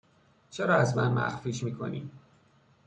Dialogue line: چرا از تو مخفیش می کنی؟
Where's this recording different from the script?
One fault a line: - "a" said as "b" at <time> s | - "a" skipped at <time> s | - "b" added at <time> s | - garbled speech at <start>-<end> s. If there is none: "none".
- "تو" said as "من" at 1.0 s